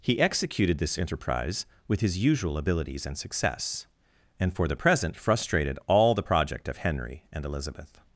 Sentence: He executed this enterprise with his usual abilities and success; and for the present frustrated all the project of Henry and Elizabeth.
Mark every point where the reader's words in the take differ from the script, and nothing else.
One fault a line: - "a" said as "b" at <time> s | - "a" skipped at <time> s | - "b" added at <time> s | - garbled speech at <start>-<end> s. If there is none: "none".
none